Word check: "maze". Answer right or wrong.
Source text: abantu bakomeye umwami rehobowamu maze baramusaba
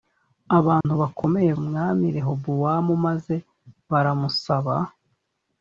right